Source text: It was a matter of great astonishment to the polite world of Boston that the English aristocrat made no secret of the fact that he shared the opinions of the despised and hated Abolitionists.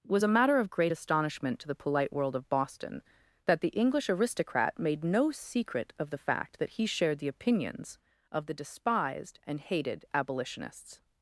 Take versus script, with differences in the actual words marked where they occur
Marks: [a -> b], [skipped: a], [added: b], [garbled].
[skipped: It] was a matter of great astonishment to the polite world of Boston that the English aristocrat made no secret of the fact that he shared the opinions of the despised and hated Abolitionists.